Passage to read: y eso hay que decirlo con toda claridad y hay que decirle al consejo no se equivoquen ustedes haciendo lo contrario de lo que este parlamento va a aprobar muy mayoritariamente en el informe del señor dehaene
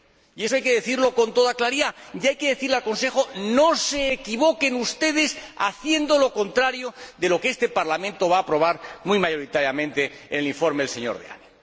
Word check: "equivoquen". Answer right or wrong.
right